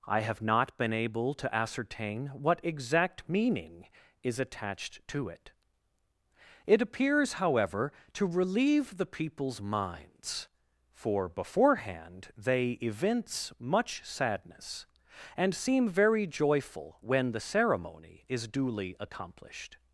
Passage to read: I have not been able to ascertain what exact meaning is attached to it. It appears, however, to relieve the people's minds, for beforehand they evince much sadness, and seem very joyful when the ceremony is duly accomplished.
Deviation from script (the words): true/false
false